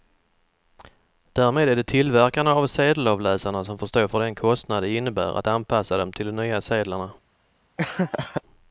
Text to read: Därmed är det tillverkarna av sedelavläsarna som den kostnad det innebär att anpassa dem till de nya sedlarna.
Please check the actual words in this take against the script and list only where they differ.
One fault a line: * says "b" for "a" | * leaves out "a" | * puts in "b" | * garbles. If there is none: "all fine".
* puts in "får stå för"